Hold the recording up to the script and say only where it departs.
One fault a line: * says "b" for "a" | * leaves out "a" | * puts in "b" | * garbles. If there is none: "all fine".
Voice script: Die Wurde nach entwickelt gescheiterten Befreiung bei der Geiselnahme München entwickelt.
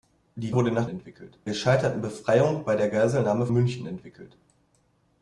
all fine